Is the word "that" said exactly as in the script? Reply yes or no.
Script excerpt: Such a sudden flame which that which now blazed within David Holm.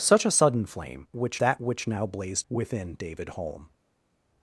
yes